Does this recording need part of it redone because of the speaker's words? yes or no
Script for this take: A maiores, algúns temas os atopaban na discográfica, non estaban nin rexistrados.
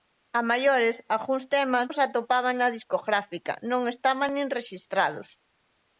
no